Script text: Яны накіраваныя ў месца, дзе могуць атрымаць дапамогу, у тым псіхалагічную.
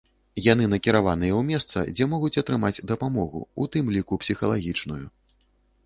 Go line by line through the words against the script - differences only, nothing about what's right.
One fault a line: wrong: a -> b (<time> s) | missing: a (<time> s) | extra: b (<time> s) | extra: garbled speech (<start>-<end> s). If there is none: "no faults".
extra: ліку (4.0 s)